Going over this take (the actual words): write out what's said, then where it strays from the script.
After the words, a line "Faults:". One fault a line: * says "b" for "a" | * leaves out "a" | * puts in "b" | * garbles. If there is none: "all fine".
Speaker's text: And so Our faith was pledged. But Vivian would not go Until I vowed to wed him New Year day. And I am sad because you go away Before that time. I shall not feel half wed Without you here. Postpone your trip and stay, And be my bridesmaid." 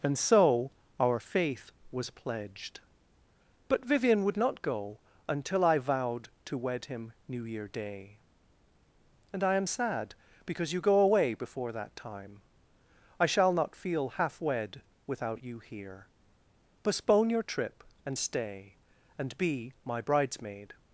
And so Our faith was pledged. But Vivian would not go Until I vowed to wed him New Year day. And I am sad because you go away Before that time. I shall not feel half wed Without you here. Postpone your trip and stay, And be my bridesmaid."
Faults:
all fine